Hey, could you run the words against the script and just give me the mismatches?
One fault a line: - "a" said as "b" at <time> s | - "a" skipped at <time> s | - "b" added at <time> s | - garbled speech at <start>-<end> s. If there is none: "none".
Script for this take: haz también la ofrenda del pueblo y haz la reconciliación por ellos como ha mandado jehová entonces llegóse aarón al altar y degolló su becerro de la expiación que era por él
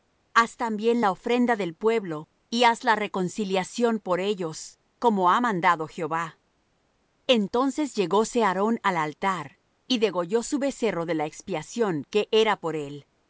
none